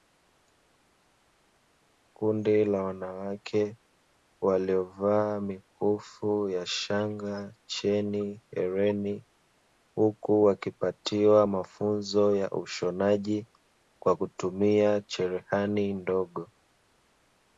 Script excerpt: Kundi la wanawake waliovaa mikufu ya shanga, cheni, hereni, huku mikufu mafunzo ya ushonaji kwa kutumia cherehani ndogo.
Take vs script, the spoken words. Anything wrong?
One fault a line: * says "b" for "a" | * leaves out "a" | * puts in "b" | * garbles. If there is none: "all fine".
* says "wakipatiwa" for "mikufu"